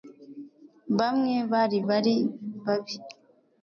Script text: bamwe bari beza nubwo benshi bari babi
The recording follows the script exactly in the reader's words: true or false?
false